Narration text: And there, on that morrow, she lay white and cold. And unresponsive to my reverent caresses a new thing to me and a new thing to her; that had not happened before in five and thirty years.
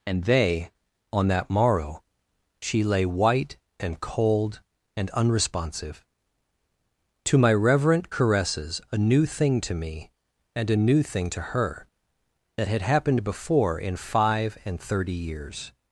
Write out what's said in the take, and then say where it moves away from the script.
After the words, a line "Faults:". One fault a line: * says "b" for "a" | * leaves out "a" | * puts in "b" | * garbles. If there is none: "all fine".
And they, on that morrow, she lay white and cold. And unresponsive to my reverent caresses a new thing to me and a new thing to her; that had happened before in five and thirty years.
Faults:
* says "they" for "there"
* leaves out "not"